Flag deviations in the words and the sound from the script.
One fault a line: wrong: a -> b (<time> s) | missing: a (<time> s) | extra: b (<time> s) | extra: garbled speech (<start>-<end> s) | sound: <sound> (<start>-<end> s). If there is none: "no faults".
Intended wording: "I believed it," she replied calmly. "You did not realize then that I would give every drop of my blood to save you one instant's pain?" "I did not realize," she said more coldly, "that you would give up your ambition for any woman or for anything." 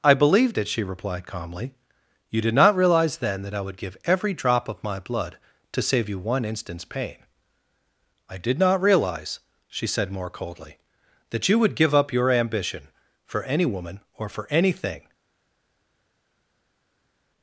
no faults